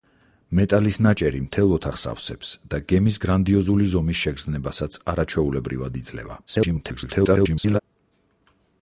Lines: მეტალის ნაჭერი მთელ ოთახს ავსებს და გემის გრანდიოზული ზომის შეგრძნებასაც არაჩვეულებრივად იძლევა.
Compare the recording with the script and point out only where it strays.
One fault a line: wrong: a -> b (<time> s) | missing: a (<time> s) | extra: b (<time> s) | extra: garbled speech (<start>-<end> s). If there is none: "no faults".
extra: garbled speech (6.5-7.8 s)